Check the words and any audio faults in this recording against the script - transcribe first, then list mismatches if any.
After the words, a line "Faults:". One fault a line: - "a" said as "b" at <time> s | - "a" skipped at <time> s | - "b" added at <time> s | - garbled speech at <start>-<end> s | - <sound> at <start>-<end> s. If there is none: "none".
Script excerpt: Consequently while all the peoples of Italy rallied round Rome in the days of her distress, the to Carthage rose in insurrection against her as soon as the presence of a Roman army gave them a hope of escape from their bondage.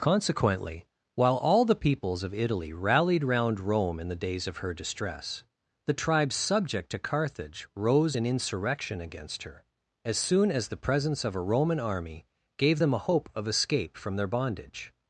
Consequently while all the peoples of Italy rallied round Rome in the days of her distress, the tribes subject to Carthage rose in insurrection against her as soon as the presence of a Roman army gave them a hope of escape from their bondage.
Faults:
- "tribes subject" added at 5.9 s